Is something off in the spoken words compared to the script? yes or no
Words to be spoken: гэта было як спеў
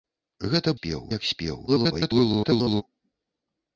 yes